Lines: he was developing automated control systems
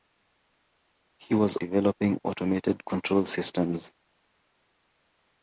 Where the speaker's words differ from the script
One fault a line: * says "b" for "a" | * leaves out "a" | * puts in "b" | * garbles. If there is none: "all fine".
all fine